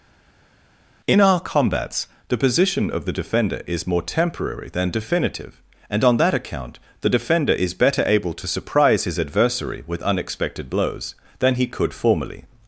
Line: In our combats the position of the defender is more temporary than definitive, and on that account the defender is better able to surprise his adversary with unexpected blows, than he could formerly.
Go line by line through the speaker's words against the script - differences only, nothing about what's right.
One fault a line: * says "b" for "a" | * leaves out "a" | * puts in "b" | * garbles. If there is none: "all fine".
all fine